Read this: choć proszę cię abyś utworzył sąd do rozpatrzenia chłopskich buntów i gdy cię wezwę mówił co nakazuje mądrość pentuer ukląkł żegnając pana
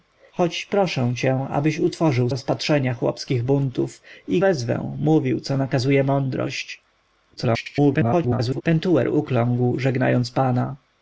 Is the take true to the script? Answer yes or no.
no